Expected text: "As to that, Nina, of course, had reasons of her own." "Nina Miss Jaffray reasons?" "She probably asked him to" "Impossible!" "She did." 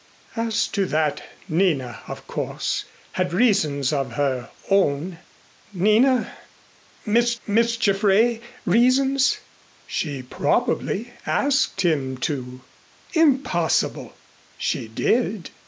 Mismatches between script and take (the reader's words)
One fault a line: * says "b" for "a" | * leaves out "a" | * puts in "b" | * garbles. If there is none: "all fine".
* puts in "Miss"